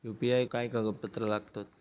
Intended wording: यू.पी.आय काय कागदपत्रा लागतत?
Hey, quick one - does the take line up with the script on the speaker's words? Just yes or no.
yes